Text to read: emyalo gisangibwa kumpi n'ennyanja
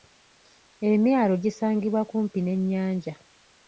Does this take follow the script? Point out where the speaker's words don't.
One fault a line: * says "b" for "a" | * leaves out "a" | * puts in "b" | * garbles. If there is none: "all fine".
all fine